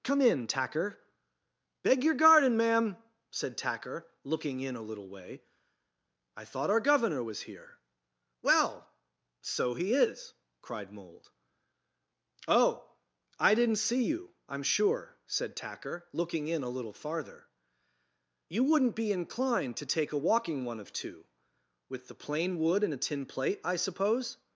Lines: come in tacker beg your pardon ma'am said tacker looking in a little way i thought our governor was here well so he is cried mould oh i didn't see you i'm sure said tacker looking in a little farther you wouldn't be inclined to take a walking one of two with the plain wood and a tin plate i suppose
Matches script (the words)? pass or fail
fail